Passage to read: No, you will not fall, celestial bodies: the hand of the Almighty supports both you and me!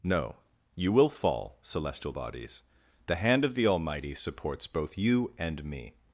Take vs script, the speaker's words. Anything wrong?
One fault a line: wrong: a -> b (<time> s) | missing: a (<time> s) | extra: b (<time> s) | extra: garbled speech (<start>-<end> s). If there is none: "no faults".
missing: not (1.1 s)